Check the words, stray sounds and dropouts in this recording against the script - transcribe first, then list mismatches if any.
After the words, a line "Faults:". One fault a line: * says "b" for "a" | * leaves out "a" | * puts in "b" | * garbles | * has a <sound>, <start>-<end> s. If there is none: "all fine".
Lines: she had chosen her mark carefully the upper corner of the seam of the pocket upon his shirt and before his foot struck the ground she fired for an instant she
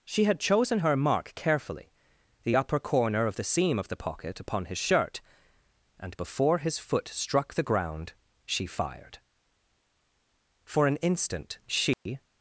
she had chosen her mark carefully the upper corner of the seam of the pocket upon his shirt and before his foot struck the ground she fired for an instant she
Faults:
* has a dropout, 11.9-12.1 s